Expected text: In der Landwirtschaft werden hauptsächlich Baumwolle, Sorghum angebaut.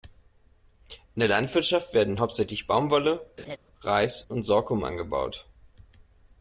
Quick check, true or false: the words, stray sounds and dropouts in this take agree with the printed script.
false